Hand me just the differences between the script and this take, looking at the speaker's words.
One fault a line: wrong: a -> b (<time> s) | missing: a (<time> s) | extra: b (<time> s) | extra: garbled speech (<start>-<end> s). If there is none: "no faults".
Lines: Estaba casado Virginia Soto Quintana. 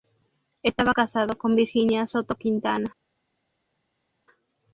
extra: con (1.4 s)